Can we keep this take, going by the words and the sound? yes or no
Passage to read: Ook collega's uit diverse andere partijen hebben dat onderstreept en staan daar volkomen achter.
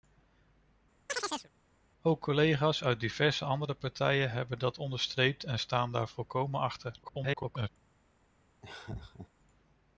no